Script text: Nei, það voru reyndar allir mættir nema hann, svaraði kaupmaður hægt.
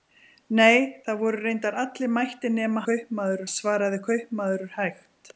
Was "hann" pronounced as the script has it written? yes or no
no